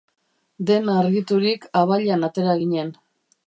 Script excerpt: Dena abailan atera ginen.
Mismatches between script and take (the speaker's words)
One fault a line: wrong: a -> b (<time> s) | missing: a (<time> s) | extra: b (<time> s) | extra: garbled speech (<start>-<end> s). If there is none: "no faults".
extra: argiturik (1.0 s)